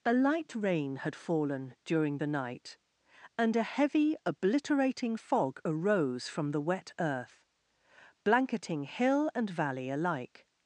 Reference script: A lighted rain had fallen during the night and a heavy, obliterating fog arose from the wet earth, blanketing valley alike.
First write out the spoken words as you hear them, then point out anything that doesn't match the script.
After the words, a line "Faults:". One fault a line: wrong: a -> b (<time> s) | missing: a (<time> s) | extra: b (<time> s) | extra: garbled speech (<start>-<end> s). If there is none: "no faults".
A light rain had fallen during the night and a heavy, obliterating fog arose from the wet earth, blanketing hill and valley alike.
Faults:
wrong: lighted -> light (0.1 s)
extra: hill and (8.8 s)